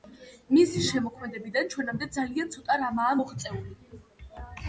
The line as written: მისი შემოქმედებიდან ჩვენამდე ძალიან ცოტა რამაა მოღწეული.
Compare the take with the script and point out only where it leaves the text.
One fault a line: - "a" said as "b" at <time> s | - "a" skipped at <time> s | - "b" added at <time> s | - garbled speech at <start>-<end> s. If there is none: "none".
none